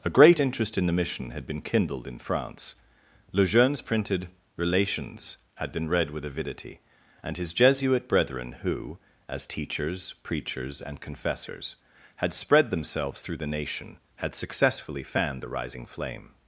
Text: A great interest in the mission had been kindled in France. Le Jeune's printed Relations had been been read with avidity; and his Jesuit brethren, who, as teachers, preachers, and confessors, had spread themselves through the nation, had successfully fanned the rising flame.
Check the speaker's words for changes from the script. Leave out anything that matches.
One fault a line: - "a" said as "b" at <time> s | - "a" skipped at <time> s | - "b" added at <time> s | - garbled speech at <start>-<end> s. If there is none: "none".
- "been" skipped at 5.9 s